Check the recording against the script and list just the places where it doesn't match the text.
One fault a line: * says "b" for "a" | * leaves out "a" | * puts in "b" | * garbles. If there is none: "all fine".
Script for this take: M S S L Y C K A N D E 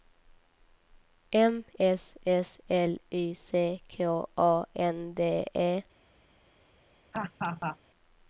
all fine